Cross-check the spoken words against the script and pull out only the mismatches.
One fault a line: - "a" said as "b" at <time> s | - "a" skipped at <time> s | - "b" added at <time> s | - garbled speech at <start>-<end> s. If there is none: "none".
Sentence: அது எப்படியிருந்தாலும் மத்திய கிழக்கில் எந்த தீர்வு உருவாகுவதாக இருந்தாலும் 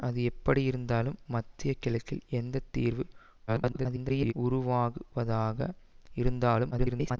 - garbled speech at 3.5-4.3 s
- garbled speech at 6.7-7.2 s